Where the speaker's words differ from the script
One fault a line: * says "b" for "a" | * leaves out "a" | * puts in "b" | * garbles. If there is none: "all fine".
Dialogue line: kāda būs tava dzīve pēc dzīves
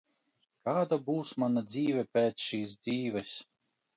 * says "mana" for "tava"
* puts in "šīs"